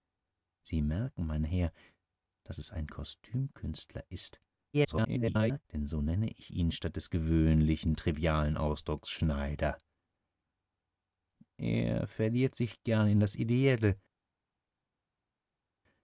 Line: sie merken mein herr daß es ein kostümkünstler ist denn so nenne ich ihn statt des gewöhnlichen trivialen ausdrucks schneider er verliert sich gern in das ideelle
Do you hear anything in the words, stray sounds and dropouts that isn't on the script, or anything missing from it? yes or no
yes